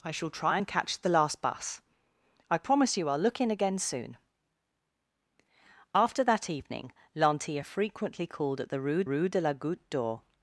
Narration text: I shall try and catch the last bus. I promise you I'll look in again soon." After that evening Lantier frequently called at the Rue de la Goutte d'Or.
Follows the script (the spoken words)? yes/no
no